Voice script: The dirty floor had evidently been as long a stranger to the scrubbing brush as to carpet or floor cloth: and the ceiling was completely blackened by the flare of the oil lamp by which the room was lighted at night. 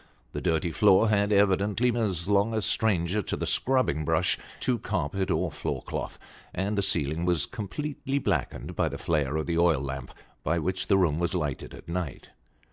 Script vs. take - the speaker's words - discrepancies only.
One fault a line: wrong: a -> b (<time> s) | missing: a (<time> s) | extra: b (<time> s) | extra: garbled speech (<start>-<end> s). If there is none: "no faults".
missing: been (1.9 s)
missing: as (4.4 s)